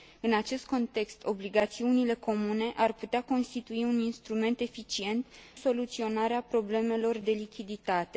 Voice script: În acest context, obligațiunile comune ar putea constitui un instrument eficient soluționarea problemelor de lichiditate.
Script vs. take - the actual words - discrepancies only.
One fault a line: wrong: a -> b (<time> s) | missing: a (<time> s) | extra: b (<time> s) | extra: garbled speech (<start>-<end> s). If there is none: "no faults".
no faults